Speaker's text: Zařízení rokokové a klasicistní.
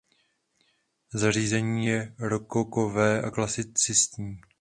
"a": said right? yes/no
yes